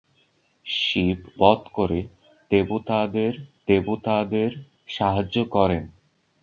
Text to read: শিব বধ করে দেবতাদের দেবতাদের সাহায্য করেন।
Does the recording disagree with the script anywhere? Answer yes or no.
no